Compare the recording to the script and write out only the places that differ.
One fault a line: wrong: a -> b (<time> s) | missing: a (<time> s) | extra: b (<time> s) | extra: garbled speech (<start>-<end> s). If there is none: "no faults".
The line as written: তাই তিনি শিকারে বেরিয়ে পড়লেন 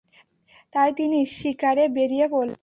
no faults